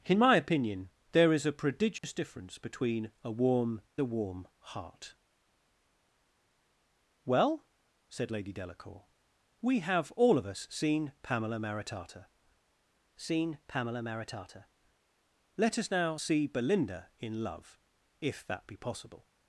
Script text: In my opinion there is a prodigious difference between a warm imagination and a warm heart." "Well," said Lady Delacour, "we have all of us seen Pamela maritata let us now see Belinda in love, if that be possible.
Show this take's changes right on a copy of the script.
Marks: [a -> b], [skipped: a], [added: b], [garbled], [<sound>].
In my opinion there is a prodigious [dropout] difference between a warm [skipped: imagination and] a warm heart." "Well," said Lady Delacour, "we have all of us seen Pamela maritata [added: seen Pamela maritata] let us now see Belinda in love, if that be possible.